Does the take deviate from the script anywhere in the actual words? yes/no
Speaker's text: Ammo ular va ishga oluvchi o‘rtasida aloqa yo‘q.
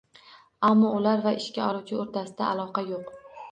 no